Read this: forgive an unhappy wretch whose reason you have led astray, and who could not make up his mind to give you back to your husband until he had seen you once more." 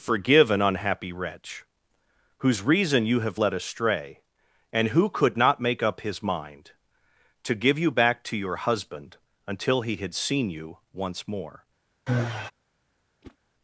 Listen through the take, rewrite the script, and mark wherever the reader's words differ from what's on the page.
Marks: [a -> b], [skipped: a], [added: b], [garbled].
forgive an unhappy wretch whose reason you have led astray, and who could not make up his mind to give you back to your husband until he had seen you once more."